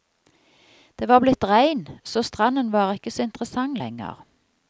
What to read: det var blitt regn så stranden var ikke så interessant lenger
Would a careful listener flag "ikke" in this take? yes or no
no